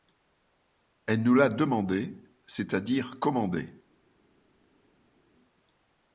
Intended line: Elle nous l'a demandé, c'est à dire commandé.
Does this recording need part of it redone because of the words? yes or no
no